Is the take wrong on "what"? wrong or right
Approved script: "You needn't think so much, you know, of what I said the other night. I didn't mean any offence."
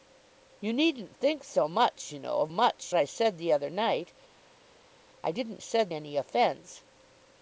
wrong